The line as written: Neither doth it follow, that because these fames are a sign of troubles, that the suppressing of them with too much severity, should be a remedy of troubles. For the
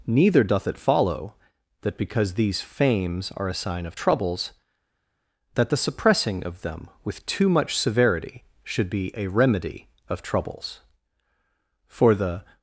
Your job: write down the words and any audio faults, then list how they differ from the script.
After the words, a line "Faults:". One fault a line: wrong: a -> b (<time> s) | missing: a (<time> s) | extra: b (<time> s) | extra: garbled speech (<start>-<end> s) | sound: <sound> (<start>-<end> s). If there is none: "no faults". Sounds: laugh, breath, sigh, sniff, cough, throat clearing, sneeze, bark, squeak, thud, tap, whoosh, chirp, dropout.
Neither doth it follow, that because these fames are a sign of troubles, that the suppressing of them with too much severity, should be a remedy of troubles. For the
Faults:
no faults